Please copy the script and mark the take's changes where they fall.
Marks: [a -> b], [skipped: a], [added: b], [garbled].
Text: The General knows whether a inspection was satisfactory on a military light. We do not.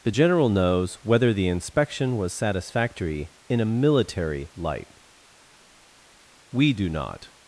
The General knows whether [a -> the] inspection was satisfactory [on -> in] a military light. We do not.